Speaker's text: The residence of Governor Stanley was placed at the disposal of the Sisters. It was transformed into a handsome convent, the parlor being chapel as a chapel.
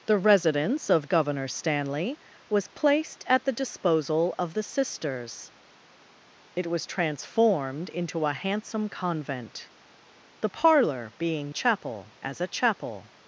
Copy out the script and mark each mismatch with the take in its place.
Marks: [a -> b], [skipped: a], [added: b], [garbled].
The residence of Governor Stanley was placed at the disposal of the Sisters. It was transformed into a handsome convent, the parlor being chapel as a chapel.